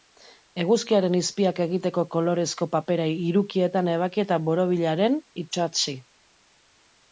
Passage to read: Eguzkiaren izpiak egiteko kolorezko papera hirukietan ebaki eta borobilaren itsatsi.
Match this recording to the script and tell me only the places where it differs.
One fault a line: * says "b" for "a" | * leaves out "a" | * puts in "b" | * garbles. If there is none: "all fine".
all fine